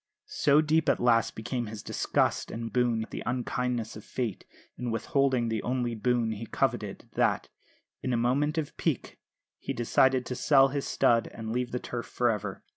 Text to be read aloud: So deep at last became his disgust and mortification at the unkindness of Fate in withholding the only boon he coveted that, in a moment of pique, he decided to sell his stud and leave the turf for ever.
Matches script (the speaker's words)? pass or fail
fail